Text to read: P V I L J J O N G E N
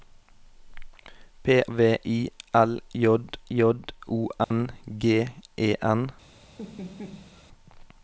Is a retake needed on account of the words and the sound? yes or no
yes